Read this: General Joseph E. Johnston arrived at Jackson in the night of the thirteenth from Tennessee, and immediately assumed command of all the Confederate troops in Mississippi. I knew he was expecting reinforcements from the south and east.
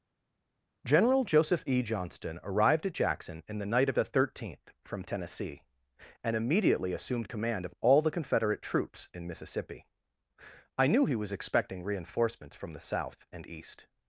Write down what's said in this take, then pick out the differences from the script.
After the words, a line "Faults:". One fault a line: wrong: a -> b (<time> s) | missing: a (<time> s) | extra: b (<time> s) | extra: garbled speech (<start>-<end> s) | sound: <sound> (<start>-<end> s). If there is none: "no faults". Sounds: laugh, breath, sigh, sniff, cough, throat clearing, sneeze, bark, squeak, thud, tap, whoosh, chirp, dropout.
General Joseph E. Johnston arrived at Jackson in the night of the thirteenth from Tennessee, and immediately assumed command of all the Confederate troops in Mississippi. I knew he was expecting reinforcements from the south and east.
Faults:
no faults